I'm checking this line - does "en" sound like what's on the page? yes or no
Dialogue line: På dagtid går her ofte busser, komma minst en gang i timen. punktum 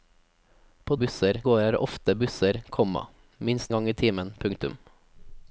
no